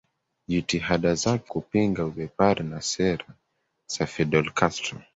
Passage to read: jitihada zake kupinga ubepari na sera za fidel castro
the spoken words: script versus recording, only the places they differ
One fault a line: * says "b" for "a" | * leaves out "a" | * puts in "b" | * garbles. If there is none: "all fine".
all fine